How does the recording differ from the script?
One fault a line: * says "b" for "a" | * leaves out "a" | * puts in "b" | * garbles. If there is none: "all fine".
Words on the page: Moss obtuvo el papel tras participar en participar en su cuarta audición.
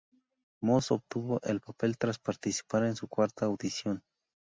* leaves out "participar en"